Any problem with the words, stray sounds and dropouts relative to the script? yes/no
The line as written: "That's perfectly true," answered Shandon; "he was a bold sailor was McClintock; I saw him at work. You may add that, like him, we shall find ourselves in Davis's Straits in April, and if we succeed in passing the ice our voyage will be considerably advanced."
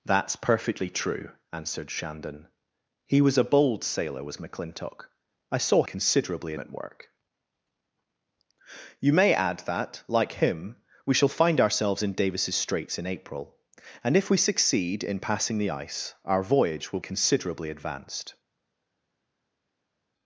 yes